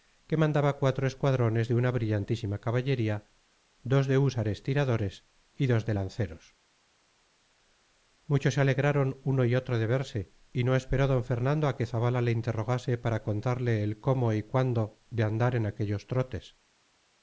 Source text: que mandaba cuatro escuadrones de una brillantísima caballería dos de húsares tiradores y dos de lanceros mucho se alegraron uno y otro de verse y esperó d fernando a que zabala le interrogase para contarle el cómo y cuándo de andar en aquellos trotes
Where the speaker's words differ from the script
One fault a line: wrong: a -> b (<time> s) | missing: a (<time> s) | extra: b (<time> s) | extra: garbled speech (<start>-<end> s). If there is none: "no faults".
extra: no (10.6 s)